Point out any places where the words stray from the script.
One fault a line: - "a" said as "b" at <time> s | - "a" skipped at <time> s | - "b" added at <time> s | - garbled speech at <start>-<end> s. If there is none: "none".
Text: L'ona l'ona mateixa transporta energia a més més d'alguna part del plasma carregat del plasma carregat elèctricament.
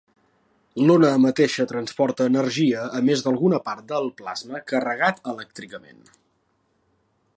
- "l'ona" skipped at 1.1 s
- "més" skipped at 3.2 s
- "del plasma carregat" skipped at 5.2 s